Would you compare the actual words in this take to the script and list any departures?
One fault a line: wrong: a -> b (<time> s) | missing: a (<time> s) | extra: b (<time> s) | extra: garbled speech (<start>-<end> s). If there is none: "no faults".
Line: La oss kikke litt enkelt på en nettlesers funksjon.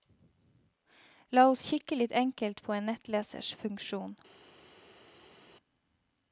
no faults